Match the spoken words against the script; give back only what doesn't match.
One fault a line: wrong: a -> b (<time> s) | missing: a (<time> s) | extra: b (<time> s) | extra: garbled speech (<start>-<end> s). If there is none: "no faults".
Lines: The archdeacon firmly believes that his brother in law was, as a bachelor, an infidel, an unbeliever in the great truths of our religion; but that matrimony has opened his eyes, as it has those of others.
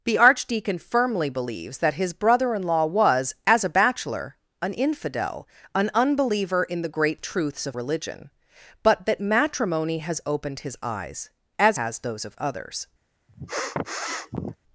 missing: our (7.8 s)
missing: it (11.8 s)